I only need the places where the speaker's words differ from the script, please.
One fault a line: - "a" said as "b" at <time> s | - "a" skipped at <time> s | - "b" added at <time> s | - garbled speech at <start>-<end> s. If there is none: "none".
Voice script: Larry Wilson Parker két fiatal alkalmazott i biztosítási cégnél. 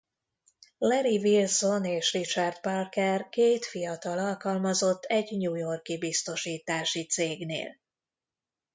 - "és Richard" added at 1.9 s
- "egy new york" added at 5.0 s